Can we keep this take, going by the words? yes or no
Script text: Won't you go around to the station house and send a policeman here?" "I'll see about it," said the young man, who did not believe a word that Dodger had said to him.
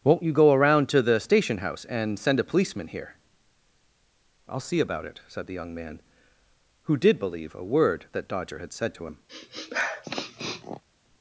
no